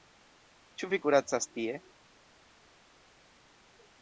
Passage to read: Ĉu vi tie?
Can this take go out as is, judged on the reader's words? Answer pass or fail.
fail